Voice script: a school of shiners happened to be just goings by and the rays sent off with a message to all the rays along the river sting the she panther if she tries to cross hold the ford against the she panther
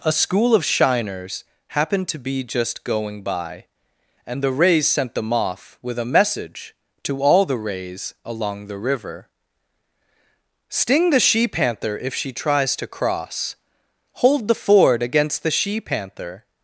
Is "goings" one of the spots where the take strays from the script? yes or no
yes